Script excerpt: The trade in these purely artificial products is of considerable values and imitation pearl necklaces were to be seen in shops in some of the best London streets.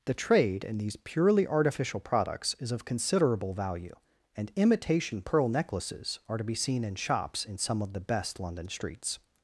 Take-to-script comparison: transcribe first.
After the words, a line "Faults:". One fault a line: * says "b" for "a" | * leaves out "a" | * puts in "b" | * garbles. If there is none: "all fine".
The trade in these purely artificial products is of considerable value and imitation pearl necklaces are to be seen in shops in some of the best London streets.
Faults:
* says "value" for "values"
* says "are" for "were"